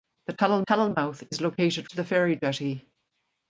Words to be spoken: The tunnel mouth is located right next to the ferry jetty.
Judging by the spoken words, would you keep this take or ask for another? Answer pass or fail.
fail